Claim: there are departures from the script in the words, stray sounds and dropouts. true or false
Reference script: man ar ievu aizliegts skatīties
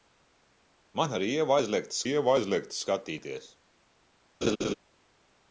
true